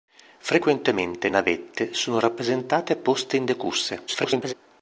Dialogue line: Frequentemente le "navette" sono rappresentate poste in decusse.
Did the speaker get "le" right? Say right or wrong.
wrong